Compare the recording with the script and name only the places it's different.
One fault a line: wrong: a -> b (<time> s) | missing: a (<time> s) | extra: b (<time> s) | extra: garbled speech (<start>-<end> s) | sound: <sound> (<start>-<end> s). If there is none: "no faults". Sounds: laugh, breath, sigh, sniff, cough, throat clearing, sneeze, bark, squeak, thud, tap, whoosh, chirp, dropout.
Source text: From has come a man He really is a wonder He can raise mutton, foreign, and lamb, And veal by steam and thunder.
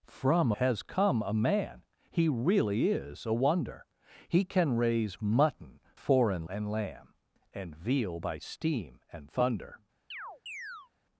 sound: chirp (10.1-10.9 s)